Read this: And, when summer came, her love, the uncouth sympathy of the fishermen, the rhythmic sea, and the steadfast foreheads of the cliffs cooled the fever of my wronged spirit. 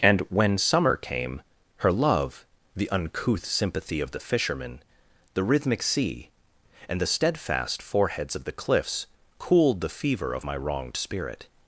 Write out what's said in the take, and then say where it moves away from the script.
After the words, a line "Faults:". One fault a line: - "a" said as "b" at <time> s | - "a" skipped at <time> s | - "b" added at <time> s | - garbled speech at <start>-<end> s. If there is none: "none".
And, when summer came, her love, the uncouth sympathy of the fishermen, the rhythmic sea, and the steadfast foreheads of the cliffs cooled the fever of my wronged spirit.
Faults:
none